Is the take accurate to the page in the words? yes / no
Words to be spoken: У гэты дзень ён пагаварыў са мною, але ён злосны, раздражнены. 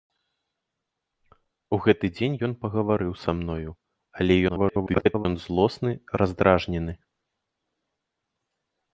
no